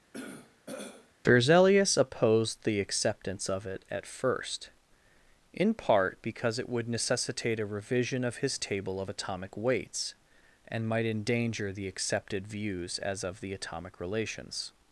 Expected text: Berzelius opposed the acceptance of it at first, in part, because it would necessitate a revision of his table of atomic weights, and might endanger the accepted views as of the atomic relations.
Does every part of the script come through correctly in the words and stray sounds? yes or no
no